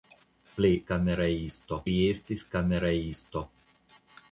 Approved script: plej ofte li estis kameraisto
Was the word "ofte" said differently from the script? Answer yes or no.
yes